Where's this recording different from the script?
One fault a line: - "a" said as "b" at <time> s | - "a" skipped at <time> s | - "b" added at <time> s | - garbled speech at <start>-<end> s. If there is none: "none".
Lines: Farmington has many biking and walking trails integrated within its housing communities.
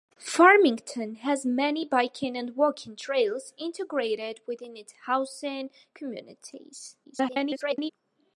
- garbled speech at 7.0-7.9 s